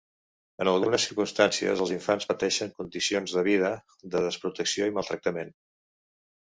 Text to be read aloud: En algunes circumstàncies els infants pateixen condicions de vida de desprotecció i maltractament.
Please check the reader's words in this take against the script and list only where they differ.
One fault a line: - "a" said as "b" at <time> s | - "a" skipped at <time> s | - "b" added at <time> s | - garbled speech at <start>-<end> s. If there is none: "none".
none